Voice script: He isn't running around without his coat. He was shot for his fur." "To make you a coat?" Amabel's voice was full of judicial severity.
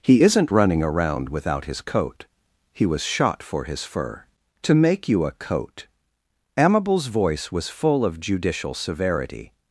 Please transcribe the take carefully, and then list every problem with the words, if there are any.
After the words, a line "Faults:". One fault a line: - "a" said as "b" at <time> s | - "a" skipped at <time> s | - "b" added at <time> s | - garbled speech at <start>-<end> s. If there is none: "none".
He isn't running around without his coat. He was shot for his fur." "To make you a coat?" Amabel's voice was full of judicial severity.
Faults:
none